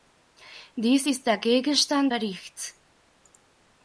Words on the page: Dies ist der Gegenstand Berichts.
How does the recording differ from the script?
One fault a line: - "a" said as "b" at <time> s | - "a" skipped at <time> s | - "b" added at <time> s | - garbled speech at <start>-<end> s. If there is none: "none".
none